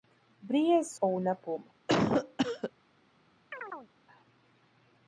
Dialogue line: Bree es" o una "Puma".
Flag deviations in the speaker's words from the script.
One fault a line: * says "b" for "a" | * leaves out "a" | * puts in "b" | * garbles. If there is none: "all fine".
all fine